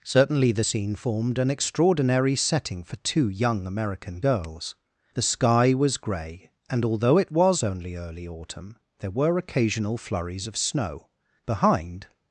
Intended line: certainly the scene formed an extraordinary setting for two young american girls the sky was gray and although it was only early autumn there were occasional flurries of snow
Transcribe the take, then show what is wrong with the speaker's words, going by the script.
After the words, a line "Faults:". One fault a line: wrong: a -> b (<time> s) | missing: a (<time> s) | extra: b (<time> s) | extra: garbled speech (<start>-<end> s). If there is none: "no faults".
certainly the scene formed an extraordinary setting for two young american girls the sky was gray and although it was only early autumn there were occasional flurries of snow behind
Faults:
extra: behind (11.5 s)